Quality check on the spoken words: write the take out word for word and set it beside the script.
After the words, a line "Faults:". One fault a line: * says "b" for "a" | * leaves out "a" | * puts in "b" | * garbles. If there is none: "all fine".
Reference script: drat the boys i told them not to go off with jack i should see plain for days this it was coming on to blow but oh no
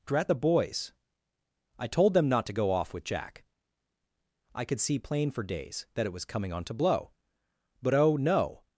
drat the boys i told them not to go off with jack i could see plain for days that it was coming on to blow but oh no
Faults:
* says "could" for "should"
* says "that" for "this"